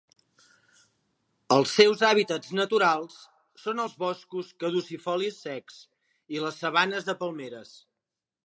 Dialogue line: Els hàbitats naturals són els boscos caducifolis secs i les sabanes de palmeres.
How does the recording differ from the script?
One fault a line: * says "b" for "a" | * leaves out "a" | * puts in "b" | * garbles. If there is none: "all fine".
* puts in "seus"